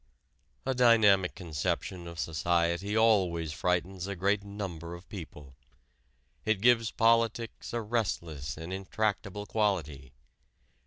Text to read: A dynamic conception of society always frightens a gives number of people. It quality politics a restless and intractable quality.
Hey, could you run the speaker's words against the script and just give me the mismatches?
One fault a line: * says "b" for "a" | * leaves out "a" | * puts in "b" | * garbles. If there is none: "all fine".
* says "great" for "gives"
* says "gives" for "quality"